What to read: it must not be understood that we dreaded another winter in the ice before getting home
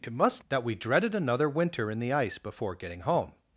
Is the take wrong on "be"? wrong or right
wrong